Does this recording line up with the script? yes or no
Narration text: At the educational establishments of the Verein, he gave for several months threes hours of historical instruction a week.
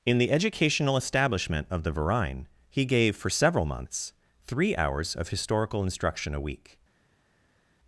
no